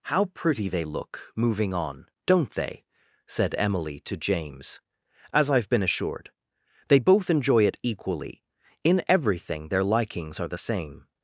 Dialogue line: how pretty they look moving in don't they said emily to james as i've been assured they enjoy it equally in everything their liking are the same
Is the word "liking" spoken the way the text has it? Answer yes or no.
no